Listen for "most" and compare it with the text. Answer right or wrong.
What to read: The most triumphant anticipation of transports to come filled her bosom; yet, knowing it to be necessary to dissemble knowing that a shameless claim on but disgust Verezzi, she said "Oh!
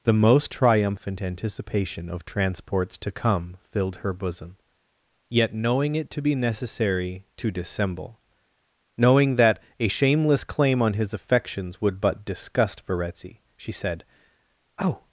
right